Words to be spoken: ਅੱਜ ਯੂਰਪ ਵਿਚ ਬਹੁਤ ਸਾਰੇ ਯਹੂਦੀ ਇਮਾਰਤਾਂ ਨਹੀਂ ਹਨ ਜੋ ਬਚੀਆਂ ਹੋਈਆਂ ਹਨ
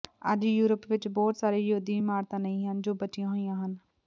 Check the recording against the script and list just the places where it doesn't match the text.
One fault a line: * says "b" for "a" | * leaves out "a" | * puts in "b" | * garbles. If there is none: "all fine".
all fine